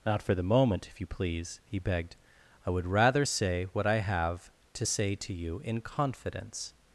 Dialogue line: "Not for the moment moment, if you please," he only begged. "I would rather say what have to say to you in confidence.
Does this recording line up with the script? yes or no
no